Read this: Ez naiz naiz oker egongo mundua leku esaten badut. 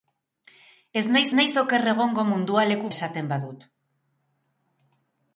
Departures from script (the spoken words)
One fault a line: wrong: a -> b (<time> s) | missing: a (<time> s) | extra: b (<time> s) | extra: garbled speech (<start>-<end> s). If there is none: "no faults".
no faults